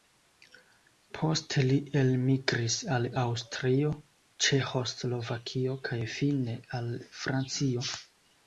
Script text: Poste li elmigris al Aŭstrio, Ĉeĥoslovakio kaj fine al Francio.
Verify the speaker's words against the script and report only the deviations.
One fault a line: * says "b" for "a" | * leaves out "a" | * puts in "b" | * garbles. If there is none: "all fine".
all fine